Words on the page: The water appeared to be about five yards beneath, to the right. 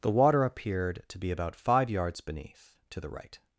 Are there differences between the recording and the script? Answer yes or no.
no